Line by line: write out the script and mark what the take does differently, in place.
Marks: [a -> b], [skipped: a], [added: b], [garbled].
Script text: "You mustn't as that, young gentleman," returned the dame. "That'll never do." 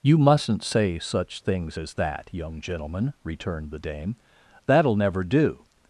"You mustn't [added: say such things] as that, young gentleman," returned the dame. "That'll never do."